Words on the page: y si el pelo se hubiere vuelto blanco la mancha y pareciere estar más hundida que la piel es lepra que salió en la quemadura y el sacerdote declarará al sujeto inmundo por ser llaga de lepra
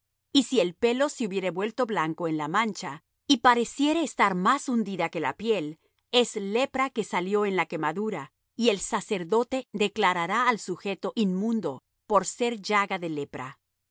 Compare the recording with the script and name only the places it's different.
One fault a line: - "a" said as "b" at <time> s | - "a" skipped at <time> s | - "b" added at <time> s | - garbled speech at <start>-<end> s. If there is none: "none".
- "en" added at 2.3 s